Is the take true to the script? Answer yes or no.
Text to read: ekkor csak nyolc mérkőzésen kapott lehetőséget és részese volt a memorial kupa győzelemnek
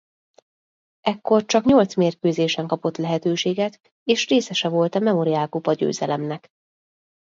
yes